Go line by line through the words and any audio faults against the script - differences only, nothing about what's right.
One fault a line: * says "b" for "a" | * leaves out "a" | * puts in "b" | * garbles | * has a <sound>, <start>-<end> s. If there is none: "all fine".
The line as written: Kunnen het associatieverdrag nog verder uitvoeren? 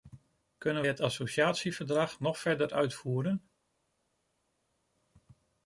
all fine